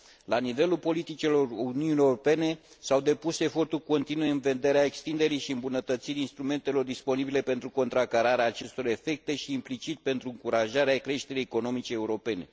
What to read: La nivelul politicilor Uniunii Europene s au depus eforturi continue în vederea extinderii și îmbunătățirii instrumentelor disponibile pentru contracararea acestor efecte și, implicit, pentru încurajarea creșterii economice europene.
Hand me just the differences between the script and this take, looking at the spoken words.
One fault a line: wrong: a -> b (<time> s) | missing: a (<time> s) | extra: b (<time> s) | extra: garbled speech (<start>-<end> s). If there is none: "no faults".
no faults